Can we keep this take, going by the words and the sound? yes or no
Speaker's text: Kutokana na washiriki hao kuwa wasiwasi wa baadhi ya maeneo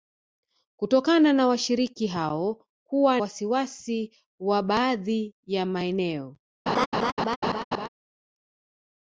no